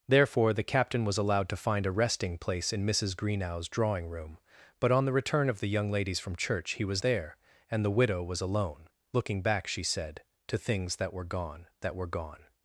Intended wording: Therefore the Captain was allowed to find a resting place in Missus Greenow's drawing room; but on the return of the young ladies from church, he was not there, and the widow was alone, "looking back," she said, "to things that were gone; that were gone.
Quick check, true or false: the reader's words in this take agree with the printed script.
false